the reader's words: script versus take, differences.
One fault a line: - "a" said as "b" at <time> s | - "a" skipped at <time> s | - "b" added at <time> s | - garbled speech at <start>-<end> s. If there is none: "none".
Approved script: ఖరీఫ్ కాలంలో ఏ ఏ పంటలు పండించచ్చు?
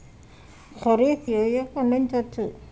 - "కాలంలో" skipped at 1.2 s
- "పంటలు" skipped at 1.6 s